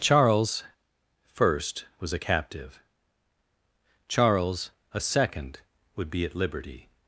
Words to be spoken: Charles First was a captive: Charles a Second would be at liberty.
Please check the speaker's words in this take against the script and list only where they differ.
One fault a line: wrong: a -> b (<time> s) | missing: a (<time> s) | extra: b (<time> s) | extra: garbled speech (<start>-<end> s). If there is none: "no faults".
no faults